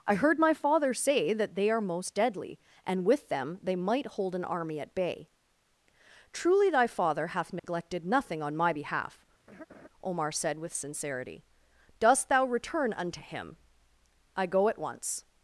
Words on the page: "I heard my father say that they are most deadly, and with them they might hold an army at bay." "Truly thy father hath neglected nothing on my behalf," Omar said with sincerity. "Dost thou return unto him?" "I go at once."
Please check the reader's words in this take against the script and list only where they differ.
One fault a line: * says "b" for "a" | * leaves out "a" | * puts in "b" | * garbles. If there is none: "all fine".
all fine